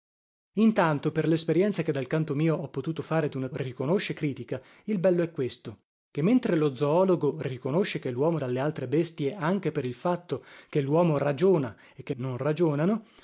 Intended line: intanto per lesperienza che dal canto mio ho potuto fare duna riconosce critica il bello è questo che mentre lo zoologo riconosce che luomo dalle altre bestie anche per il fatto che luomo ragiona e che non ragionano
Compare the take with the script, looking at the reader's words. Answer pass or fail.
pass